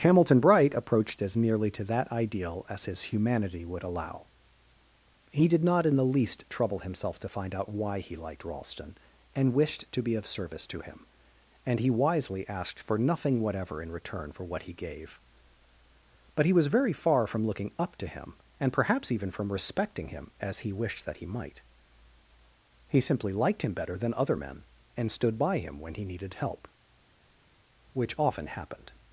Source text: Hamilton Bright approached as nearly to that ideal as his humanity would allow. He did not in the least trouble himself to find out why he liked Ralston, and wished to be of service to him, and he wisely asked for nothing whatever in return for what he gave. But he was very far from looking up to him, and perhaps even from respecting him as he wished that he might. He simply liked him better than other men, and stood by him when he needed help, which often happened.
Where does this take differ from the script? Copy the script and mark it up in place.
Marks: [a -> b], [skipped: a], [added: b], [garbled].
Hamilton Bright approached as nearly to that ideal as his humanity would allow. He did not in the least trouble himself to find out why he liked Ralston, and wished to be of service to him, and he wisely asked for nothing whatever in return for what he gave. But he was very far from looking up to him, and perhaps even from respecting him as he wished that he might. He simply liked him better than other men, and stood by him when he needed help, which often happened.